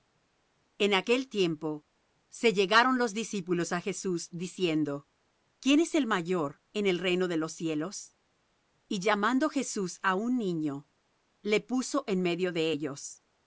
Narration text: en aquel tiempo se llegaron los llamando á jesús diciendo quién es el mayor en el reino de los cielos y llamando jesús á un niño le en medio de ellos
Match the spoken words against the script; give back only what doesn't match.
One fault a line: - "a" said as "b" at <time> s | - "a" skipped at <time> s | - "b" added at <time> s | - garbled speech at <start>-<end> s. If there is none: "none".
- "llamando" said as "discípulos" at 3.1 s
- "puso" added at 11.6 s